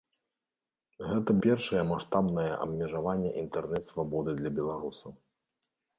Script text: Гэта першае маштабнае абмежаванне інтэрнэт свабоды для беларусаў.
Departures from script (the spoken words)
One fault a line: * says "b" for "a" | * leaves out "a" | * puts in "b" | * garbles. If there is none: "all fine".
all fine